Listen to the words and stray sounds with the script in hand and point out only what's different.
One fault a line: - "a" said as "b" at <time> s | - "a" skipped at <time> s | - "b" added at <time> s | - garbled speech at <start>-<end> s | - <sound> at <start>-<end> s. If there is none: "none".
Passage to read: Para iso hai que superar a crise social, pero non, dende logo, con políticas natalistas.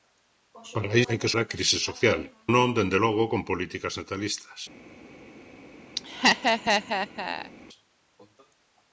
- "iso" skipped at 1.0 s
- "superar" skipped at 1.3 s
- "pero" skipped at 2.2 s
- laugh at 6.0-7.5 s